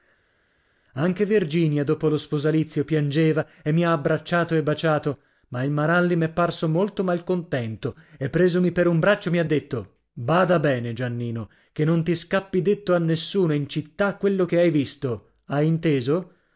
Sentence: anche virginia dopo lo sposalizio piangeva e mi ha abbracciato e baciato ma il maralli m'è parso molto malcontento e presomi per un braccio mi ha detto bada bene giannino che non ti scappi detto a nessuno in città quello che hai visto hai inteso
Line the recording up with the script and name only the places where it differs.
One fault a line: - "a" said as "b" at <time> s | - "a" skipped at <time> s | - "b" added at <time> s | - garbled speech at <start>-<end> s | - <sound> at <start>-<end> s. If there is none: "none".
none